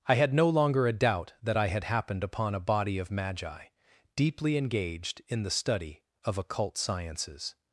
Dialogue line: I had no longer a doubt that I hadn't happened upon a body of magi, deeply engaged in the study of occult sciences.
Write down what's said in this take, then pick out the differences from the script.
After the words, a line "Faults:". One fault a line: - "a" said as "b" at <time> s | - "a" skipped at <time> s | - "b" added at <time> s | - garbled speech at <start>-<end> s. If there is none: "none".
I had no longer a doubt that I had happened upon a body of magi, deeply engaged in the study of occult sciences.
Faults:
- "hadn't" said as "had" at 1.7 s